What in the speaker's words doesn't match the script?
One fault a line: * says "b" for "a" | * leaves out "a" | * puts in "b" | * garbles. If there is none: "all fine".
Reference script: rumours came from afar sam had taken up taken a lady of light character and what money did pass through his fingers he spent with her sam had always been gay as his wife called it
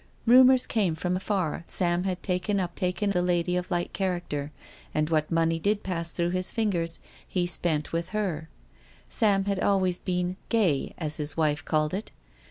all fine